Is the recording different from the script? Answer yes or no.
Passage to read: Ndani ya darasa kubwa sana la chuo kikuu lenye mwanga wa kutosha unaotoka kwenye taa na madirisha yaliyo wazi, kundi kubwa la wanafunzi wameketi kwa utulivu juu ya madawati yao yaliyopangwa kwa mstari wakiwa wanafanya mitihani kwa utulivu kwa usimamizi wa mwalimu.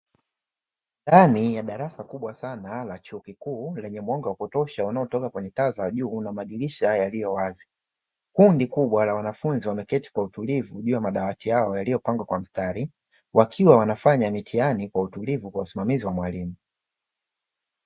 yes